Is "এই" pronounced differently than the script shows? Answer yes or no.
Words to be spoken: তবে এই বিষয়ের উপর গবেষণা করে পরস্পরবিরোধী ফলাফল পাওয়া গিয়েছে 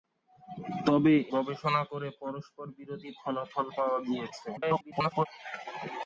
yes